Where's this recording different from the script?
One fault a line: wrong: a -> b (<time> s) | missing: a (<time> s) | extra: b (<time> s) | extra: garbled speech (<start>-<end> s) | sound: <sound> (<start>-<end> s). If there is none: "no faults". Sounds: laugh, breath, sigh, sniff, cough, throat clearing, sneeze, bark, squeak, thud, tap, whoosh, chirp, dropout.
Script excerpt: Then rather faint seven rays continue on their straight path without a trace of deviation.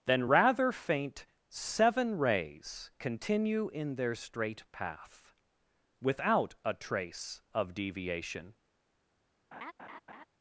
wrong: on -> in (3.7 s)
sound: laugh (9.5-10.3 s)